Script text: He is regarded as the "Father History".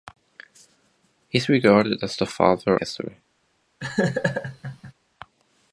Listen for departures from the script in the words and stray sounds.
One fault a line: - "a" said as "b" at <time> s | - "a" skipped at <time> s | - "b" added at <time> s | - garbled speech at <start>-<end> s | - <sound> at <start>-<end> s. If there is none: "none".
- laugh at 3.8-4.9 s